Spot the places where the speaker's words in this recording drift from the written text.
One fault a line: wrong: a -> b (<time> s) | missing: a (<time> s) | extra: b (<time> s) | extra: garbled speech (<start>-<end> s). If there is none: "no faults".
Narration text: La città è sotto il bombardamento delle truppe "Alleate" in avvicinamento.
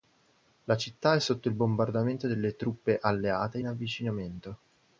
no faults